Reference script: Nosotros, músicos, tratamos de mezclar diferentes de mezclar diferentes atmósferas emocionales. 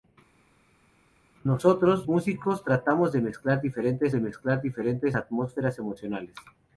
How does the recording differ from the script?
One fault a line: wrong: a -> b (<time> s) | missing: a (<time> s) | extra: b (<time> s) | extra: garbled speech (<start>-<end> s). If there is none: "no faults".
no faults